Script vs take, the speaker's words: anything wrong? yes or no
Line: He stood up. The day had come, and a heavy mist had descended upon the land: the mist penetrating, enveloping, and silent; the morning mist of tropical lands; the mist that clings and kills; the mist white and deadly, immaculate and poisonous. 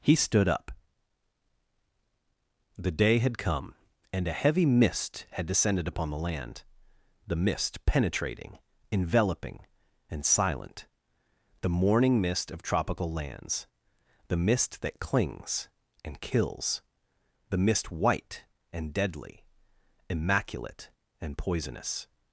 no